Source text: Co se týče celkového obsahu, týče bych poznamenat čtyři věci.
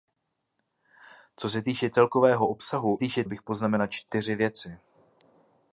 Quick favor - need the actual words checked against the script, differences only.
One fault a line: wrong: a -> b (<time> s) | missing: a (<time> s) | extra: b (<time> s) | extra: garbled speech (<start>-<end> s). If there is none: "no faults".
no faults